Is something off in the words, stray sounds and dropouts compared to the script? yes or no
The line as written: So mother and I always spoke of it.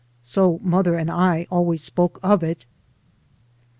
no